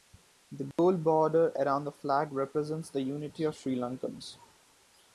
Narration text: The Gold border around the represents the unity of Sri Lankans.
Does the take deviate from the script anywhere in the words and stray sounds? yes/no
yes